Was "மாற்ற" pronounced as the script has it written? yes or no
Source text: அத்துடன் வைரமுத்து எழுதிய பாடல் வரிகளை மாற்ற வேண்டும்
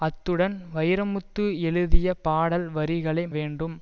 no